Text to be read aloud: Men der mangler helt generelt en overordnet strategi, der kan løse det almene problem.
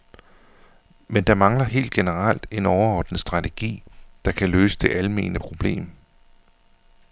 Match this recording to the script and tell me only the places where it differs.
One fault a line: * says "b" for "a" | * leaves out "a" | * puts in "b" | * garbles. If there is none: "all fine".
all fine